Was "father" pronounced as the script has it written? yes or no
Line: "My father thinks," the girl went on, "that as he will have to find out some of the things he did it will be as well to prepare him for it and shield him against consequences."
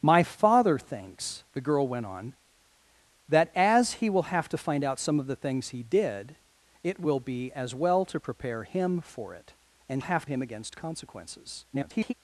yes